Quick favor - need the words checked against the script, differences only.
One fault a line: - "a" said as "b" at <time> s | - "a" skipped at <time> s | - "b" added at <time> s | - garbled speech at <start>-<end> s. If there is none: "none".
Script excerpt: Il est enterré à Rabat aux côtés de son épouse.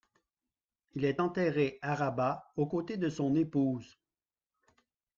none